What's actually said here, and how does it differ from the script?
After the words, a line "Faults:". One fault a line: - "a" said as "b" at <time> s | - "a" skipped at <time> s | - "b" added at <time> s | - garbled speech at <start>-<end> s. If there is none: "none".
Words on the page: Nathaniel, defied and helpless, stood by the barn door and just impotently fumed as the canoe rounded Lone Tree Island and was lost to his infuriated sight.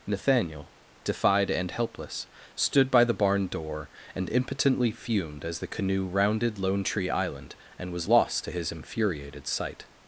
Nathaniel, defied and helpless, stood by the barn door and impotently fumed as the canoe rounded Lone Tree Island and was lost to his infuriated sight.
Faults:
- "just" skipped at 4.3 s